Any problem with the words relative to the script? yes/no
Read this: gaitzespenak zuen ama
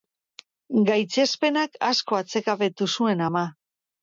yes